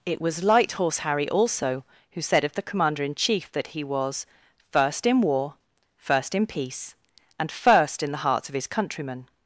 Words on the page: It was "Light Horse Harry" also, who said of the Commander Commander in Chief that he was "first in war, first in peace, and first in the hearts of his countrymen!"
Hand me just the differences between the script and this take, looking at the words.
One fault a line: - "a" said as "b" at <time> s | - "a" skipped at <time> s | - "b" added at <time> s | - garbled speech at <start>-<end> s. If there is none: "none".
- "Commander" skipped at 3.0 s